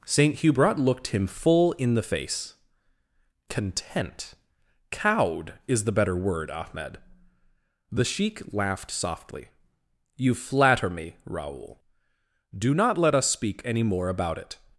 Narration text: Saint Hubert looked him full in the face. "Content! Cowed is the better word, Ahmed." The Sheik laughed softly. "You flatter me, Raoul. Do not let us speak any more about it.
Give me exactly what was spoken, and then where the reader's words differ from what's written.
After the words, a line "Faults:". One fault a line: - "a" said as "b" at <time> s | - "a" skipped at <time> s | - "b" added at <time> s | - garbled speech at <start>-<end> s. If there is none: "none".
Saint Hubert looked him full in the face. "Content! Cowed is the better word, Ahmed." The Sheik laughed softly. "You flatter me, Raoul. Do not let us speak any more about it.
Faults:
none